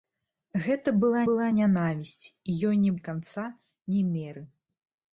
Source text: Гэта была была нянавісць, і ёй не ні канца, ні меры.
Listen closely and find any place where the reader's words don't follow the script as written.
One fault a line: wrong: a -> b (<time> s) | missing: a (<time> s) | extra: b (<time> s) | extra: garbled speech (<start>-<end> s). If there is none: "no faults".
no faults